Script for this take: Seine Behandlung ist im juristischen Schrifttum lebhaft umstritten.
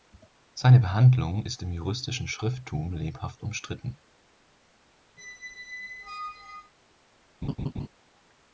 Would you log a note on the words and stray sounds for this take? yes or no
yes